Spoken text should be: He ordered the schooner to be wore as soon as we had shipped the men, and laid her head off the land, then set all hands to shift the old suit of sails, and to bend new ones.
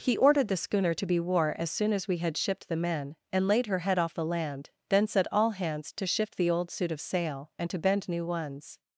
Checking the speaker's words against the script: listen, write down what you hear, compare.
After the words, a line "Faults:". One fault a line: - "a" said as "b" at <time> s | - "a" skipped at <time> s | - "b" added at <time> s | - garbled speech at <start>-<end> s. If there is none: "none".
He ordered the schooner to be wore as soon as we had shipped the men, and laid her head off the land, then set all hands to shift the old suit of sail, and to bend new ones.
Faults:
- "sails" said as "sail" at 7.0 s